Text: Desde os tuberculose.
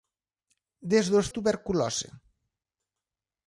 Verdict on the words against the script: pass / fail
pass